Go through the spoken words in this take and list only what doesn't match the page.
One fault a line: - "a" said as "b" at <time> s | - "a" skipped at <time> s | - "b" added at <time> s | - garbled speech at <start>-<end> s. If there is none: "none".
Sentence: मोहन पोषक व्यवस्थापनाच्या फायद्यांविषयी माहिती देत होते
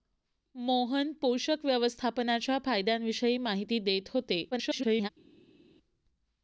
- garbled speech at 4.5-5.1 s